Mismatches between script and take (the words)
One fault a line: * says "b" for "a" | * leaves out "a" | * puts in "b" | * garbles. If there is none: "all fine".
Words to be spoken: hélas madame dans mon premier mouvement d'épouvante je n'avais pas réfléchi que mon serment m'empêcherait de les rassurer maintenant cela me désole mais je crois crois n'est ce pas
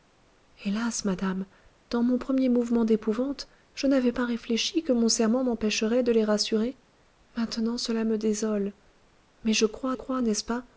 all fine